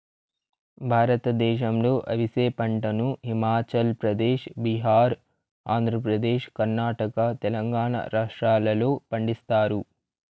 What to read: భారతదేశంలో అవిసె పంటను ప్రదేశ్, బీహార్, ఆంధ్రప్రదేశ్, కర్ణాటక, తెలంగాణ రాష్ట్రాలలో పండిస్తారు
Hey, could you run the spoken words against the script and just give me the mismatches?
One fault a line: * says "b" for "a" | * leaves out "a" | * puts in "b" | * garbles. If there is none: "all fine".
* puts in "హిమాచల్"